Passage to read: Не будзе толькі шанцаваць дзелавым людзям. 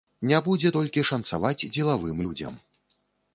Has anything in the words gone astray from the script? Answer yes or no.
no